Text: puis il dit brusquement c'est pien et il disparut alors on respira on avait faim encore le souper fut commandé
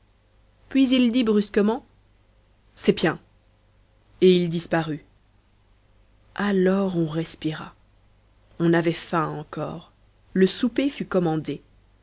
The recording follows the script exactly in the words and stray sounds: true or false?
true